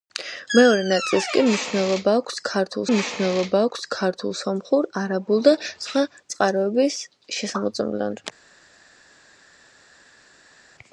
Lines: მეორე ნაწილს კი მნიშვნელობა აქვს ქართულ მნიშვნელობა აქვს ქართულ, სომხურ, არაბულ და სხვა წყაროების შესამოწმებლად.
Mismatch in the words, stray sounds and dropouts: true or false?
false